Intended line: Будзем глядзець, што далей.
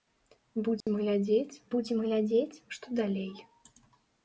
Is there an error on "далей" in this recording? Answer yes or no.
no